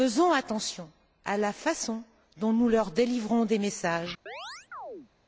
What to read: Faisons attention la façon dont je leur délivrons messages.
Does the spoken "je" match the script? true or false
false